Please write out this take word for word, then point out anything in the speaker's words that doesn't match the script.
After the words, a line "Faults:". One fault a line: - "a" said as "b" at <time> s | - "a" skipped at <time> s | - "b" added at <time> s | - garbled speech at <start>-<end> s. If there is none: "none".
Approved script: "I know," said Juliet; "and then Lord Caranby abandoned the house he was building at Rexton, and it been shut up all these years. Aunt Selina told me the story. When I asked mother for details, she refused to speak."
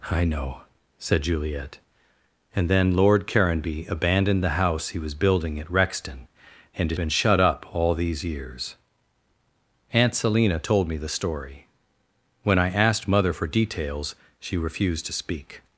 "I know," said Juliet; "and then Lord Caranby abandoned the house he was building at Rexton, and it been shut up all these years. Aunt Selina told me the story. When I asked mother for details, she refused to speak."
Faults:
none